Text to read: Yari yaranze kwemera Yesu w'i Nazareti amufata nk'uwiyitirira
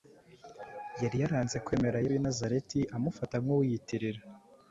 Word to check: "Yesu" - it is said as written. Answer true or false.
false